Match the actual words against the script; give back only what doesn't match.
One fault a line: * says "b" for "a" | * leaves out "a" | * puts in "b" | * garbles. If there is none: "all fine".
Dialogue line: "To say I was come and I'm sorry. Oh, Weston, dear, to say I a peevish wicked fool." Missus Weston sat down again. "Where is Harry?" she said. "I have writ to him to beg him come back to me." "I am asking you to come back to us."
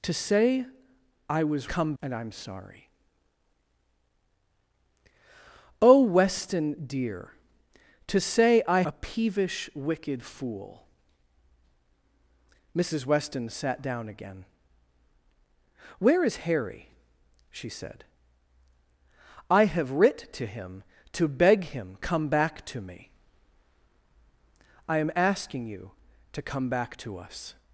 all fine